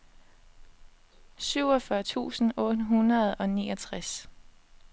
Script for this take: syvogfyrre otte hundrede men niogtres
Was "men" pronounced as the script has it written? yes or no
no